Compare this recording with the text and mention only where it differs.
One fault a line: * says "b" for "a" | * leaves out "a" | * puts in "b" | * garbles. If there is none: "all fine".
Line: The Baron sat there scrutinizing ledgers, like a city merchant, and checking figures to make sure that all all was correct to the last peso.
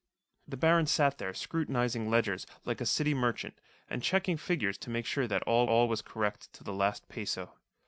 all fine